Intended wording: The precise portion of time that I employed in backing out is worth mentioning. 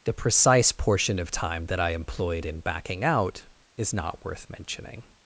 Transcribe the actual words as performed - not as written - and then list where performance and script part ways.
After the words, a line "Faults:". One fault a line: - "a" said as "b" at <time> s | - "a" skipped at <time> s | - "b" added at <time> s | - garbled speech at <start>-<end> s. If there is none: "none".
The precise portion of time that I employed in backing out is not worth mentioning.
Faults:
- "not" added at 3.9 s